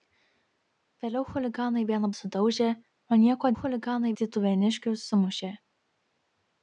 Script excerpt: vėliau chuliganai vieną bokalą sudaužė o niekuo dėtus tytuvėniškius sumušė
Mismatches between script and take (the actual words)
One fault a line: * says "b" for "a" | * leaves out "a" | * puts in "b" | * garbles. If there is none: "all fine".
* leaves out "bokalą"
* says "chuliganai" for "dėtus"